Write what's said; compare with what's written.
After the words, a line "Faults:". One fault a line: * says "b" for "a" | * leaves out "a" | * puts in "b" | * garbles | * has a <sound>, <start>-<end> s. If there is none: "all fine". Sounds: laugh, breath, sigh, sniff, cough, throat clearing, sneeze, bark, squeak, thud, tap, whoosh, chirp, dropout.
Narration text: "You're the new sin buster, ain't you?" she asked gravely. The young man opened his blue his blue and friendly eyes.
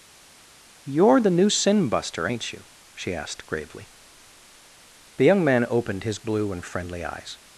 "You're the new sin buster, ain't you?" she asked gravely. The young man opened his blue and friendly eyes.
Faults:
* leaves out "his blue"